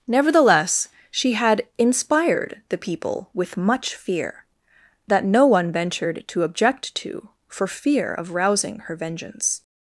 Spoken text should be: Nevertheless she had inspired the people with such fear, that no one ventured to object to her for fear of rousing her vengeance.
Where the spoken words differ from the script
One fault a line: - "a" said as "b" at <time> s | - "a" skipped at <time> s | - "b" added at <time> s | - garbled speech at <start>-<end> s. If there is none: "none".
- "such" said as "much" at 3.6 s
- "her" skipped at 7.3 s